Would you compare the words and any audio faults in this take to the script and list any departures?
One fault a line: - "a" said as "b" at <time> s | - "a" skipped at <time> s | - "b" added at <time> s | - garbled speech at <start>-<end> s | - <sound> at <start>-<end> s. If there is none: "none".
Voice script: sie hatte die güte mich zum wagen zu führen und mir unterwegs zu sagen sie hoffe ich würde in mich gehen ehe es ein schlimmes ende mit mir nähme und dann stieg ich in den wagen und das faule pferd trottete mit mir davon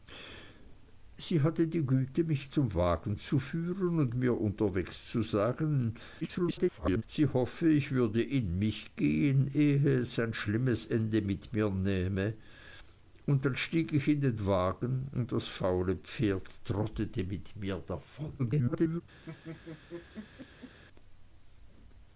- garbled speech at 6.2-7.0 s
- garbled speech at 18.4-19.0 s
- laugh at 19.2-20.8 s